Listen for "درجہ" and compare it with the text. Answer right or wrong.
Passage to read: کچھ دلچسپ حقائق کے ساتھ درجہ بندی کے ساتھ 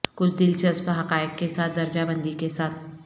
right